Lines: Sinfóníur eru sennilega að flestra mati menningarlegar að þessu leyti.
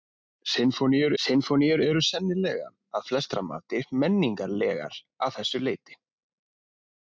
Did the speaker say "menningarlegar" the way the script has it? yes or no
yes